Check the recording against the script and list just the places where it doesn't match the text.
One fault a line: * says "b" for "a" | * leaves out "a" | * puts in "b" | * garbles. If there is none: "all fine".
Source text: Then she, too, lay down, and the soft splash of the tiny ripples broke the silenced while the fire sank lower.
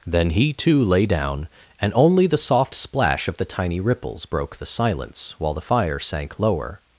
* says "he" for "she"
* puts in "only"
* says "silence" for "silenced"